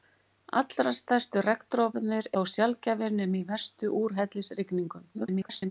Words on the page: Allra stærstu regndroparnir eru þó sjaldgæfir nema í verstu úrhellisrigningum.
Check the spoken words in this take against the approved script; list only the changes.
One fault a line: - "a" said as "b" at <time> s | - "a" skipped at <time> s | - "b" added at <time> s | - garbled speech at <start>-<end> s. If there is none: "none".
- "eru" skipped at 2.3 s
- garbled speech at 5.1-5.7 s